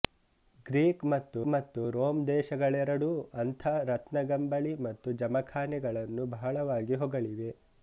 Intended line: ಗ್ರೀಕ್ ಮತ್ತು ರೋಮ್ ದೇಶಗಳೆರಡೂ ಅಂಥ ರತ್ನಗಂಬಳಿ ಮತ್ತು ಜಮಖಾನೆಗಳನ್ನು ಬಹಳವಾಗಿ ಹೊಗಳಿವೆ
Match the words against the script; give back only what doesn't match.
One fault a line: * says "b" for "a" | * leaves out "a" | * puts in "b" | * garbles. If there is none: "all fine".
* puts in "ಮತ್ತು"